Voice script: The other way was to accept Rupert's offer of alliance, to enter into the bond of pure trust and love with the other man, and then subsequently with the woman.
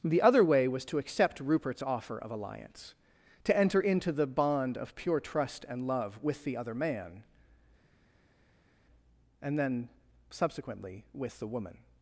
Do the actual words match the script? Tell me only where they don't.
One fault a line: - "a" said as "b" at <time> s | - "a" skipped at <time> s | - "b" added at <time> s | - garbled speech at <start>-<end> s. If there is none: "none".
none